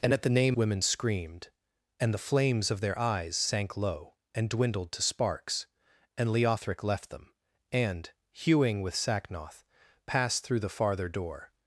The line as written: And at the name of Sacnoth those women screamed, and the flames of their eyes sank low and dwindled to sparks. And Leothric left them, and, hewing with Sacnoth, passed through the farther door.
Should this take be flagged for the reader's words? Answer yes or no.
yes